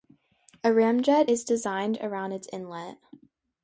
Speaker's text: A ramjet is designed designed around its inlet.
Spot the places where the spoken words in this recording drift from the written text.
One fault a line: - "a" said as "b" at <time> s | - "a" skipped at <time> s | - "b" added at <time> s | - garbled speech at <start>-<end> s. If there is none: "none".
- "designed" skipped at 2.0 s